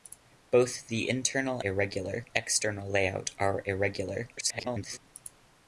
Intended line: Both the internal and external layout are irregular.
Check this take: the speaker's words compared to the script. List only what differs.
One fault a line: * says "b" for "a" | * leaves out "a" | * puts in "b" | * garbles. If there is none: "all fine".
* says "irregular" for "and"
* garbles